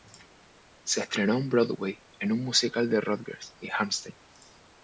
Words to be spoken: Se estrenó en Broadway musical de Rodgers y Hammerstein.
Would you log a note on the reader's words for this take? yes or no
yes